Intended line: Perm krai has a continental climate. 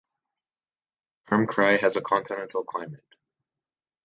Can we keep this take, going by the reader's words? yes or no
yes